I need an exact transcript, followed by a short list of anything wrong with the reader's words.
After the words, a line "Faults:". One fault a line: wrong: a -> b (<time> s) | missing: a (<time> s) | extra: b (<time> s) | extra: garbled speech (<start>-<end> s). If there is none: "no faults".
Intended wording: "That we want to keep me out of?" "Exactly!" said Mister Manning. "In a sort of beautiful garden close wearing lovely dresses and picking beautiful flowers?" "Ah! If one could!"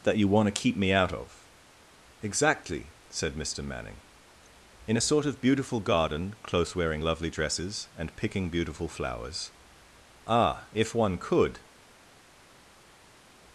"That you want to keep me out of?" "Exactly!" said Mister Manning. "In a sort of beautiful garden close wearing lovely dresses and picking beautiful flowers?" "Ah! If one could!"
Faults:
wrong: we -> you (0.2 s)